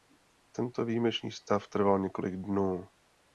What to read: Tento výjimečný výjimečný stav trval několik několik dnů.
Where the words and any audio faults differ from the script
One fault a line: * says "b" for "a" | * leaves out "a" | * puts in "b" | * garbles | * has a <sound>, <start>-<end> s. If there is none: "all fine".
* leaves out "výjimečný"
* leaves out "několik"